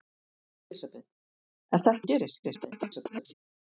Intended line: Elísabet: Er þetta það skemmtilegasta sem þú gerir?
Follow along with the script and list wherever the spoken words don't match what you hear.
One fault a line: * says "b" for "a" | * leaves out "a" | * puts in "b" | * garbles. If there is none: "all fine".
* leaves out "það skemmtilegasta sem"
* garbles